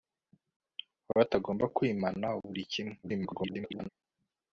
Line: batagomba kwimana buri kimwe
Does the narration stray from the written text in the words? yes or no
yes